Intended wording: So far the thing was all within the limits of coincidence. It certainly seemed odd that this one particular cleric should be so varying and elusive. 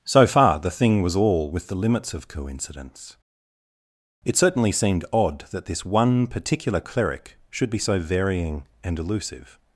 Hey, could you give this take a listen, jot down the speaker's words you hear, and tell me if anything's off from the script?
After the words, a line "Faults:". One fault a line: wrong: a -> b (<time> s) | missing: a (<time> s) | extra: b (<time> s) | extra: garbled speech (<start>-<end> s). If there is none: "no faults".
So far the thing was all with the limits of coincidence. It certainly seemed odd that this one particular cleric should be so varying and elusive.
Faults:
wrong: within -> with (1.5 s)